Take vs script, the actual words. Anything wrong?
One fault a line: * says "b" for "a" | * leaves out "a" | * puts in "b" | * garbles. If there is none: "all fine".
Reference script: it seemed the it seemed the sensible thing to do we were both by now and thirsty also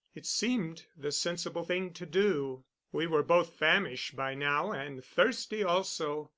* leaves out "it seemed the"
* puts in "famished"